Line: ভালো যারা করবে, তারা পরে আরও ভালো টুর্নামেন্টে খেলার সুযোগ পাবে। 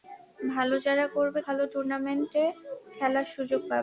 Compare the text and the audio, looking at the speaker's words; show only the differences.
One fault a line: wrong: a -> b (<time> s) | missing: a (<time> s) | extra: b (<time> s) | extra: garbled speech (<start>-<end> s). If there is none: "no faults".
missing: তারা পরে আরও (1.4 s)